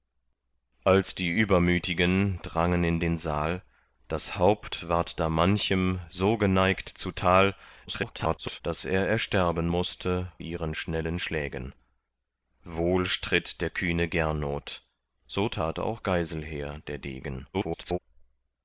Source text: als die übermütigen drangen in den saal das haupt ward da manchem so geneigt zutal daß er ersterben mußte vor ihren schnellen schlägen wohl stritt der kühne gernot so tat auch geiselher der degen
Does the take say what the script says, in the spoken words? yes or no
no